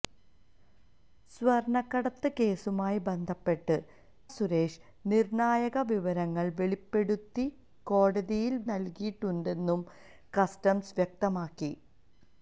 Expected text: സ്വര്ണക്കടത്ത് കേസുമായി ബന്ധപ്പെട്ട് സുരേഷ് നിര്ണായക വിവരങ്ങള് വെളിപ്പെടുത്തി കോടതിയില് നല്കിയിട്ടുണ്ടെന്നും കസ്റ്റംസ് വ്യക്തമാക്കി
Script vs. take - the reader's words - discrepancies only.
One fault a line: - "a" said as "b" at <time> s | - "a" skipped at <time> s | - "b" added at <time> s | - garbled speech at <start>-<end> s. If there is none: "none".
none